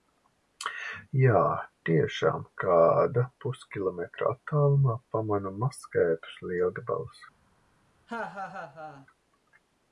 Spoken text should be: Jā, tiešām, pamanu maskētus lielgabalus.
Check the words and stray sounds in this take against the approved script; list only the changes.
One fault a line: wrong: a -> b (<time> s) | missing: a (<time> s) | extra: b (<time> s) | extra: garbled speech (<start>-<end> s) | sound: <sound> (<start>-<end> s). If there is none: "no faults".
extra: kāda puskilometra attālumā (2.6 s)
sound: laugh (8.1-9.1 s)